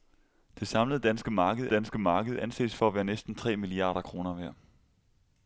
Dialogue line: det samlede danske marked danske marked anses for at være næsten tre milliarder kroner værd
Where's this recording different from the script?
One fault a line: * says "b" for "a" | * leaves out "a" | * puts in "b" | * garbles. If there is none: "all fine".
all fine